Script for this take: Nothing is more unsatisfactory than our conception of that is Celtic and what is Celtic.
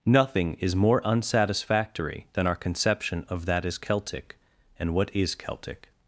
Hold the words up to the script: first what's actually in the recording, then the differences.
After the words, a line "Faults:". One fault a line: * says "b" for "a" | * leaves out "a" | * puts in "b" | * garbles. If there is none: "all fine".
Nothing is more unsatisfactory than our conception of that is Celtic and what is Celtic.
Faults:
all fine